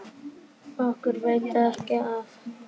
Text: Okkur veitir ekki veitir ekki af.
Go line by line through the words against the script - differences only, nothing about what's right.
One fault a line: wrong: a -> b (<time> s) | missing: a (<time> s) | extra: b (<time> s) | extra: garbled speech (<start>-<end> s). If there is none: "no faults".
missing: veitir ekki (2.0 s)